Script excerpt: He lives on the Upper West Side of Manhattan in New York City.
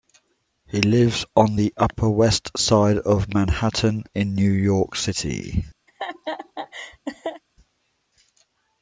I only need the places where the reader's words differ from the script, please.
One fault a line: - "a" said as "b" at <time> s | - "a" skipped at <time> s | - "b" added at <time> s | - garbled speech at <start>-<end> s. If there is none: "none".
none